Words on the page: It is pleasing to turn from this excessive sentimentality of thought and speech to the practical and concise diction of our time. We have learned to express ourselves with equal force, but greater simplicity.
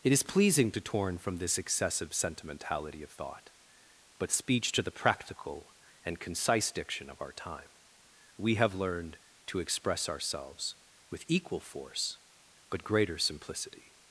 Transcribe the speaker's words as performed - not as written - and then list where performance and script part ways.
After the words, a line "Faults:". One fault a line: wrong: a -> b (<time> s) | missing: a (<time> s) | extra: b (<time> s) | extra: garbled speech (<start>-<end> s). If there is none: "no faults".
It is pleasing to torn from this excessive sentimentality of thought but speech to the practical and concise diction of our time. We have learned to express ourselves with equal force, but greater simplicity.
Faults:
wrong: turn -> torn (0.8 s)
wrong: and -> but (4.2 s)